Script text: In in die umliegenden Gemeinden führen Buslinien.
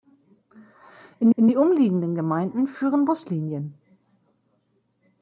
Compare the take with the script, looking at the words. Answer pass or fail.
pass